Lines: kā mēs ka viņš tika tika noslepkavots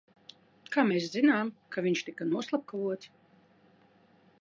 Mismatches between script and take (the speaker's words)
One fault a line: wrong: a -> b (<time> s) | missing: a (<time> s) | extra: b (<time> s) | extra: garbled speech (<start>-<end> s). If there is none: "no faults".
extra: zinām (1.2 s)
missing: tika (2.3 s)